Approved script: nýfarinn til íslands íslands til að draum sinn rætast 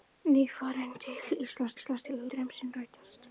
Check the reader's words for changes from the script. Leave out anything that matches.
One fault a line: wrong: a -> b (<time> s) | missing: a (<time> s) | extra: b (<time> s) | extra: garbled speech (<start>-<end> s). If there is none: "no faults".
no faults